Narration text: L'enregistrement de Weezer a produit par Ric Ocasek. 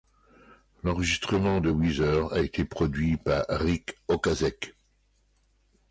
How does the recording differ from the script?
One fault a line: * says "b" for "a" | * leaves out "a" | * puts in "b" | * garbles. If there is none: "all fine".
* puts in "été"